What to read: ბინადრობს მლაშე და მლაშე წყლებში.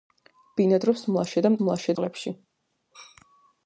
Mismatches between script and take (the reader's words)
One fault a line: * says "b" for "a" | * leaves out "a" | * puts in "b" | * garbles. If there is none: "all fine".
all fine